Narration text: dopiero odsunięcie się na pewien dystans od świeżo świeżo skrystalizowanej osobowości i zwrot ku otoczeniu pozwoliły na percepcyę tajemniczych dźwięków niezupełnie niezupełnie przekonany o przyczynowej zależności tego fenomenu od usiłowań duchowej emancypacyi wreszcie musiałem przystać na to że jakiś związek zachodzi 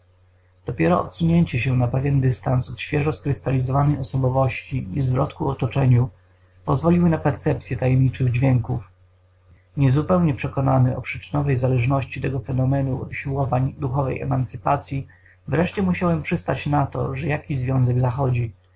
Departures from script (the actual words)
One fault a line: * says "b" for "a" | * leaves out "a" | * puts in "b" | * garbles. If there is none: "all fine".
* leaves out "świeżo"
* leaves out "niezupełnie"